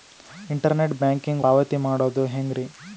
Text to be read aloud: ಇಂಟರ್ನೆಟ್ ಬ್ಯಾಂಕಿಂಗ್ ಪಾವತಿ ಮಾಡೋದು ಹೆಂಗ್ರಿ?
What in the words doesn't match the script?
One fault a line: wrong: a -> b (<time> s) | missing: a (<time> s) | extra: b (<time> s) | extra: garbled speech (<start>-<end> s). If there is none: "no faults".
no faults